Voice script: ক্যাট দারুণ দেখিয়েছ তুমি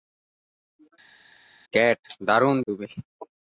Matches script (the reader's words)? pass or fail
fail